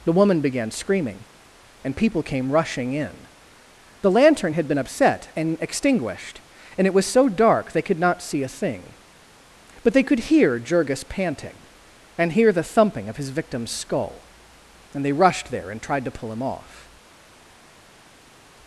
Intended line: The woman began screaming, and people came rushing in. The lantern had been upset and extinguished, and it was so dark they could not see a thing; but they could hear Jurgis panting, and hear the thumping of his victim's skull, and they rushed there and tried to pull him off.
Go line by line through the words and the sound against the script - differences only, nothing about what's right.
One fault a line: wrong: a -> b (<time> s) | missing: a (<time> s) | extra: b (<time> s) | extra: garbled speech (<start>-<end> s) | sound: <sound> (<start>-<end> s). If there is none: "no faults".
no faults